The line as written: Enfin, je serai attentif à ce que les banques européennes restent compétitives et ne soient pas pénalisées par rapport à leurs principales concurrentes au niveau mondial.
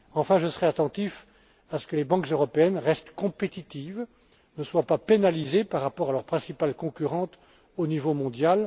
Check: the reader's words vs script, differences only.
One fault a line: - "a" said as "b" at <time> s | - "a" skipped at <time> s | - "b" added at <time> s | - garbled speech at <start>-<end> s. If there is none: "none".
none